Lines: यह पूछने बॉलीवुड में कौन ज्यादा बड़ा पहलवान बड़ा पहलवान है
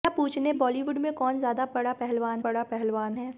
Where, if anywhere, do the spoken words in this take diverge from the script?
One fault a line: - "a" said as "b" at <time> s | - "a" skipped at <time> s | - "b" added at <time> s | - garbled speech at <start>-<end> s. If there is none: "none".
none